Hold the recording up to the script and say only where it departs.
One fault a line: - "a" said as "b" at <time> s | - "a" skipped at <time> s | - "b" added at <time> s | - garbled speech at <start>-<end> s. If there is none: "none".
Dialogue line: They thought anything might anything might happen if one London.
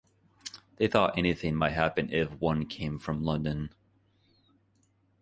- "anything might" skipped at 1.7 s
- "came from" added at 2.7 s